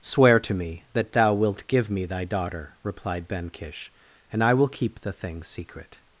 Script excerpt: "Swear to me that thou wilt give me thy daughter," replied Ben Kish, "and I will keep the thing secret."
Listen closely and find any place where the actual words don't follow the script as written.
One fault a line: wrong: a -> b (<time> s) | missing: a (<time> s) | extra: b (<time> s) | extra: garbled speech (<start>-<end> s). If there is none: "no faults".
no faults